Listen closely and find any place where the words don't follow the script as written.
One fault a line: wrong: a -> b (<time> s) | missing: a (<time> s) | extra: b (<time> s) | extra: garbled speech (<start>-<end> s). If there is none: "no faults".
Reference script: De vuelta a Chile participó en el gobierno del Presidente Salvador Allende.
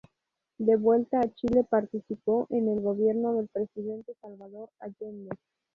no faults